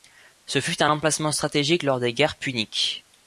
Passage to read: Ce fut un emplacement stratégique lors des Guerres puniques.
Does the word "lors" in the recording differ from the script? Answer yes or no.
no